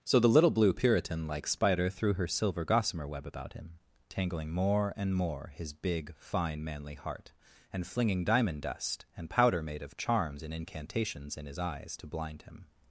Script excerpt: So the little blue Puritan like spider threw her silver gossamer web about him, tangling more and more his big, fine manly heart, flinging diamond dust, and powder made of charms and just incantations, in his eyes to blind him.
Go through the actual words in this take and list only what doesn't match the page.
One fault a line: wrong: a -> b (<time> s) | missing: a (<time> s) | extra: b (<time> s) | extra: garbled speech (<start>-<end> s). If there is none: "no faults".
extra: and (7.7 s)
missing: just (10.5 s)